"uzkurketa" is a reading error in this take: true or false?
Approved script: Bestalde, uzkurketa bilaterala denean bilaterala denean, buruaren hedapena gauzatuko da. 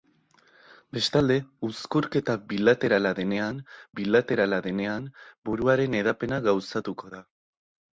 false